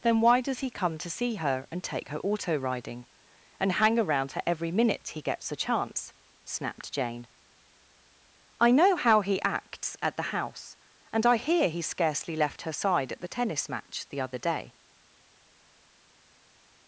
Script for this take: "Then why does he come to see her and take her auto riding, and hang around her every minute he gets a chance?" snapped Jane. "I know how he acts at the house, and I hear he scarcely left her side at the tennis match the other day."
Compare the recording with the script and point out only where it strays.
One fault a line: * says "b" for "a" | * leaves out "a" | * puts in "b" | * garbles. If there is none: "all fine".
all fine